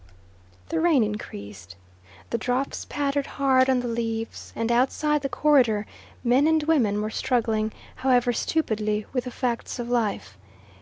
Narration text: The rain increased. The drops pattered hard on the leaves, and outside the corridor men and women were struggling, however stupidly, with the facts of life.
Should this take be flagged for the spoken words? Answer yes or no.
no